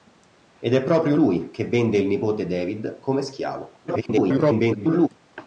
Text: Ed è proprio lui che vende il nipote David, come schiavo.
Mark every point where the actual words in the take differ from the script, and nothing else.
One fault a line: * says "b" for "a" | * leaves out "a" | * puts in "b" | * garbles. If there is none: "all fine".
* garbles